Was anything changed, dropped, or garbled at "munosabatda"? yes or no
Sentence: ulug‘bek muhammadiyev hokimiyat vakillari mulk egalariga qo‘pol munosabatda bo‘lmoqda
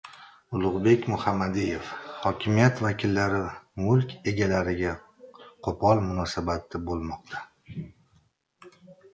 no